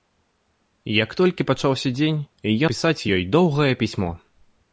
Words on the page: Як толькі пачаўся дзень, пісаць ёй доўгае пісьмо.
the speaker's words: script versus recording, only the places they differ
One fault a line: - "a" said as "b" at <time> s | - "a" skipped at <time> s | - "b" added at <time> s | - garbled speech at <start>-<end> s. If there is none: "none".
none